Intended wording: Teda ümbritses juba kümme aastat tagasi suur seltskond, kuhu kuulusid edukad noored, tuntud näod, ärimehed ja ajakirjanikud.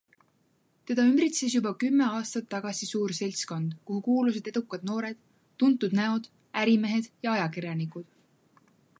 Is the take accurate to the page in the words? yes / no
yes